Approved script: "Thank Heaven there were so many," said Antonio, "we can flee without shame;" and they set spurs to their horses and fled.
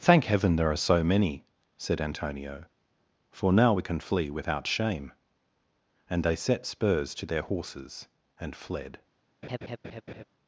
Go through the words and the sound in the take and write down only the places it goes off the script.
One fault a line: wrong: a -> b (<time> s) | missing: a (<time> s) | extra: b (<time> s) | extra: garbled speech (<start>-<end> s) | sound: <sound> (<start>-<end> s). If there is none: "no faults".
wrong: were -> are (0.7 s)
extra: for now (3.3 s)
sound: laugh (9.4-10.2 s)